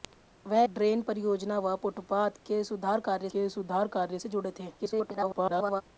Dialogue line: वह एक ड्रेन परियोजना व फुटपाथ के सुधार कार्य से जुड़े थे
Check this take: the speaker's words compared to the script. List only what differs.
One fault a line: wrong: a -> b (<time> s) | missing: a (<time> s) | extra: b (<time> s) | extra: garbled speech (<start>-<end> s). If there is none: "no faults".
missing: एक (0.6 s)
extra: के सुधार कार्य (3.3 s)
extra: garbled speech (4.8-5.8 s)